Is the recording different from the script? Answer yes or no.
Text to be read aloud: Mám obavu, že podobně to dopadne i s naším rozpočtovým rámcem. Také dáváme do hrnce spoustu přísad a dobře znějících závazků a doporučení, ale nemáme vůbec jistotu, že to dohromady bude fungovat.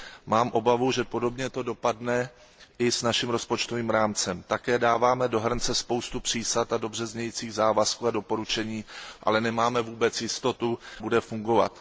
yes